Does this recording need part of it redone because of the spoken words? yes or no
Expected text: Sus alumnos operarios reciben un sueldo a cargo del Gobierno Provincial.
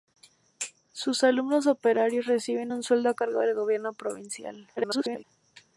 yes